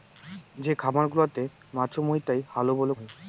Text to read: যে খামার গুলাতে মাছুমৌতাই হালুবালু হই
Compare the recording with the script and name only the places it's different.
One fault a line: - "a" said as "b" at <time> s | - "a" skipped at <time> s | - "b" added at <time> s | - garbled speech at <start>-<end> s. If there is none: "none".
none